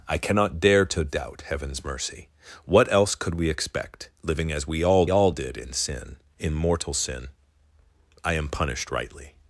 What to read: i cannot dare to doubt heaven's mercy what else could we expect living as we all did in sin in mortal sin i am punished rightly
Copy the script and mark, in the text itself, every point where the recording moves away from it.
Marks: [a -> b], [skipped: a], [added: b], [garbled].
i cannot dare to doubt heaven's mercy what else could we expect living as we all [added: all] did in sin in mortal sin i am punished rightly